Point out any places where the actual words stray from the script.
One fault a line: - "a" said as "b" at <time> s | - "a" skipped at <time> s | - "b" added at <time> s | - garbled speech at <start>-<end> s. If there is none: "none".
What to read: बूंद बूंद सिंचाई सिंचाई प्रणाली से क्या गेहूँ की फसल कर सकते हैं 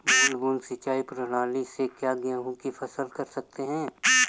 - "सिंचाई" skipped at 1.0 s